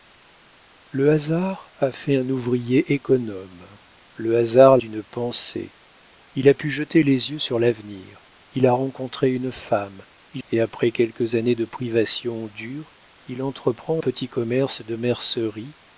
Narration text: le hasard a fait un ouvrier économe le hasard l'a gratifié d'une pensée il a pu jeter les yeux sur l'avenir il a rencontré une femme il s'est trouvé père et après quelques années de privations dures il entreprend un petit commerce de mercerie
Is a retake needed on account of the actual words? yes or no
yes